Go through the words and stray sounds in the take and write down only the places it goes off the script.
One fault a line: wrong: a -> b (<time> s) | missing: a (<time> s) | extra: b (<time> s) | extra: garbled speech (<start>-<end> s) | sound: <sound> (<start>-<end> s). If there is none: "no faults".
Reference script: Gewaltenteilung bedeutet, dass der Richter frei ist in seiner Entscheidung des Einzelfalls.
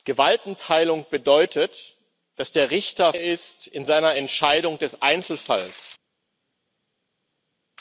missing: frei (3.1 s)